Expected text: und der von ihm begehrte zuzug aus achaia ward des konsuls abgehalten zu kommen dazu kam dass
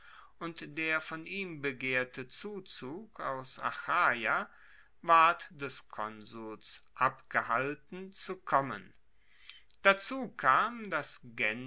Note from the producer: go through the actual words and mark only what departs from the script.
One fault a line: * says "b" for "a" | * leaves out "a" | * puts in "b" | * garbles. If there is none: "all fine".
all fine